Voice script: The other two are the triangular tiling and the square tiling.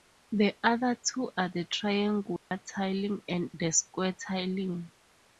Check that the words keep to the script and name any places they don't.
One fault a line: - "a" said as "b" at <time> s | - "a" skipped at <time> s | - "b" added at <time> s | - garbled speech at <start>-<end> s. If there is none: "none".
none